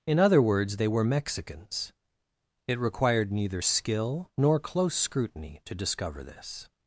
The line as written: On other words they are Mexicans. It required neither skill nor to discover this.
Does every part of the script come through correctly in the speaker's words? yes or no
no